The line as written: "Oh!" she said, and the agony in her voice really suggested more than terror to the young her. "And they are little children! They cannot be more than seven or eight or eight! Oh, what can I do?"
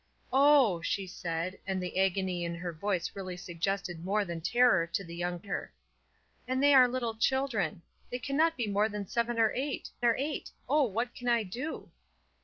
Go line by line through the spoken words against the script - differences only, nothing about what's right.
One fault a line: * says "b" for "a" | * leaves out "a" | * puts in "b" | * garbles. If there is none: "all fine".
all fine